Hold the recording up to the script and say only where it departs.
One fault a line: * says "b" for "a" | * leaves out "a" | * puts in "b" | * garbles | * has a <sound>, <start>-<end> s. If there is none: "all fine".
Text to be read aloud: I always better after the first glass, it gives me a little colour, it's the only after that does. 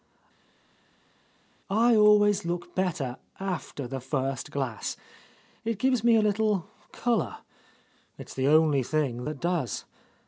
* puts in "look"
* says "thing" for "after"